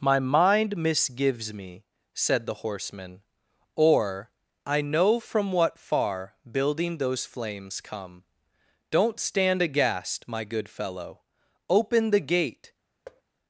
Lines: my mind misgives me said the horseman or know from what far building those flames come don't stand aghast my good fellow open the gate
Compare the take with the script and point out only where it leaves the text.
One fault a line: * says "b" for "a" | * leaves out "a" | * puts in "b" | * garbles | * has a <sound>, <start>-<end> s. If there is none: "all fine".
* puts in "i"
* has a thud, 13.1-13.2 s